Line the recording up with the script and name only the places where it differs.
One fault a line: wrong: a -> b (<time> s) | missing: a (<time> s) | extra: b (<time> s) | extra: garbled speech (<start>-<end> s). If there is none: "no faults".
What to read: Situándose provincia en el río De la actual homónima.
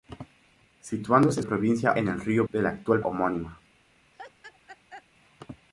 no faults